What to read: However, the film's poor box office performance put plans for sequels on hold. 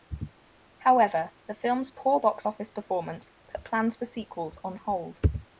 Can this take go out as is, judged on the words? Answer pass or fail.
pass